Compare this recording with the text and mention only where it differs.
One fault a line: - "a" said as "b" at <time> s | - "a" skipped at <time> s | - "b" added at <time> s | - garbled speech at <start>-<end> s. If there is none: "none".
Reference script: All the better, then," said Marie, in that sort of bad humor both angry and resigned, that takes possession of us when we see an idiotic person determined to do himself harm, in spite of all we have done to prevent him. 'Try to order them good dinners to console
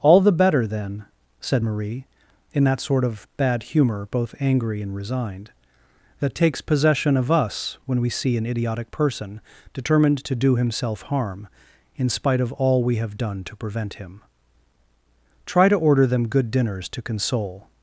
none